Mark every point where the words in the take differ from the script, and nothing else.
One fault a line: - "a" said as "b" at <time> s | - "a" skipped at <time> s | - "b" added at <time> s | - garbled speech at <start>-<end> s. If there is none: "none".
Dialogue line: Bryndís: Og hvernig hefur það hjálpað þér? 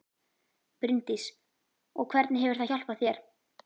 none